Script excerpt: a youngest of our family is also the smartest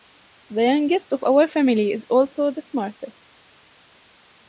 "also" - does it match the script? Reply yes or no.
yes